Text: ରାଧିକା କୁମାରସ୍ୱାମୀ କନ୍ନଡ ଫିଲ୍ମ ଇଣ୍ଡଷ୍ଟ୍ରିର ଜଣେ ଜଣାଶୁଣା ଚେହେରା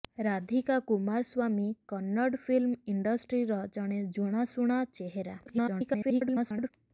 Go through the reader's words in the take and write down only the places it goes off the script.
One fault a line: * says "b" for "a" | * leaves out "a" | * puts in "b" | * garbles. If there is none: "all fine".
* garbles